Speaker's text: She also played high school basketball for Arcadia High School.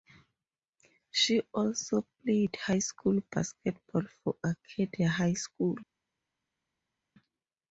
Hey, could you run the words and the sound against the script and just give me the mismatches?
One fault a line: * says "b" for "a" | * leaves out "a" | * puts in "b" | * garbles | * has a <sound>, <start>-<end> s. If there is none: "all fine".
all fine